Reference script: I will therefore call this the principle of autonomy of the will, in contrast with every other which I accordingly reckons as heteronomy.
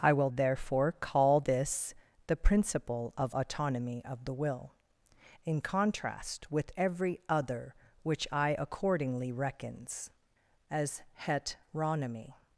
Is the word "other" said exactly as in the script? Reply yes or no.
yes